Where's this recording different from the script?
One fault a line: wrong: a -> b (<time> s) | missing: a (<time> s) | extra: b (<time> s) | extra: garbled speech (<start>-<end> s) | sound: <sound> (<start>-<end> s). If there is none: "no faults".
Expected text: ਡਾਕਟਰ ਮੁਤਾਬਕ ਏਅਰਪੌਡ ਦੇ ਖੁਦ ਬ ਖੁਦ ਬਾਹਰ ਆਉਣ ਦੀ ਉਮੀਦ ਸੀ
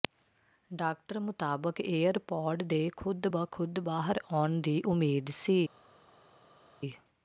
no faults